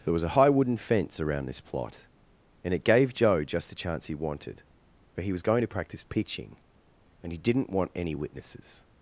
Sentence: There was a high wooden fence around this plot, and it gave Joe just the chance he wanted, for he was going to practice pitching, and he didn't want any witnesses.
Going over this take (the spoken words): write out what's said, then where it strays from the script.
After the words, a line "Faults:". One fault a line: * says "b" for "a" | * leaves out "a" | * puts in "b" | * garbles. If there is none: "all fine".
There was a high wooden fence around this plot, and it gave Joe just the chance he wanted, for he was going to practice pitching, and he didn't want any witnesses.
Faults:
all fine